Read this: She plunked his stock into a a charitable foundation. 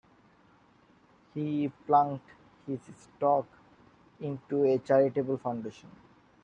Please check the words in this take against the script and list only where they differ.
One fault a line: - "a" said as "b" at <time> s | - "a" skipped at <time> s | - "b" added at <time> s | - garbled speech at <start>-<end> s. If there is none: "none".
- "She" said as "He" at 1.4 s
- "a" skipped at 4.8 s